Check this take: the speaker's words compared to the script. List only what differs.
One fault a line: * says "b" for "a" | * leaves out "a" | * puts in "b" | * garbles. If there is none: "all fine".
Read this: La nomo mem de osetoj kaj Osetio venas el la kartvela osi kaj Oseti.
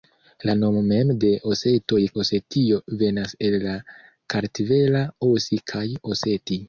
* leaves out "kaj"